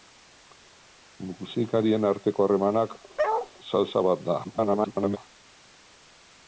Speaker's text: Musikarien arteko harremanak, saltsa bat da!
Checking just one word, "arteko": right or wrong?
right